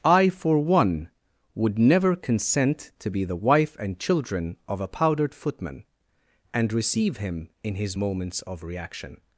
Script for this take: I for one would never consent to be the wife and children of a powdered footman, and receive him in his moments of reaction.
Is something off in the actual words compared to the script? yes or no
no